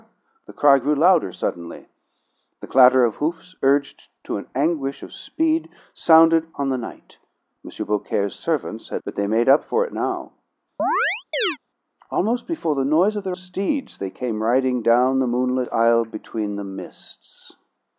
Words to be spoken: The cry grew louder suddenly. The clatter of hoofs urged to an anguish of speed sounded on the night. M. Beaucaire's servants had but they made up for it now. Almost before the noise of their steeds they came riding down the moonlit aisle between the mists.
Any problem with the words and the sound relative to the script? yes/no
yes